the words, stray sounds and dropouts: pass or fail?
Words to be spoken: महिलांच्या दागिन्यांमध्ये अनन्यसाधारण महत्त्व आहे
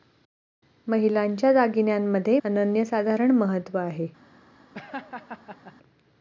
fail